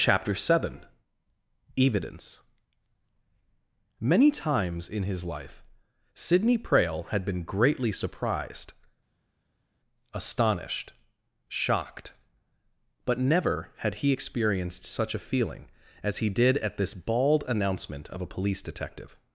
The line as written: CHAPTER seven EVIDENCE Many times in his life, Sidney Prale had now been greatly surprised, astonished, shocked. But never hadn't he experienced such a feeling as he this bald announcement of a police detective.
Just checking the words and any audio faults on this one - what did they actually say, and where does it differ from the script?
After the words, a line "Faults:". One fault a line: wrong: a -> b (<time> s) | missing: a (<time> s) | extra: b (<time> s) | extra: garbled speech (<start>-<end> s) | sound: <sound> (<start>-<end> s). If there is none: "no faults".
CHAPTER seven EVIDENCE Many times in his life, Sidney Prale had been greatly surprised, astonished, shocked. But never had he experienced such a feeling as he did at this bald announcement of a police detective.
Faults:
missing: now (7.2 s)
wrong: hadn't -> had (13.8 s)
extra: did at (16.3 s)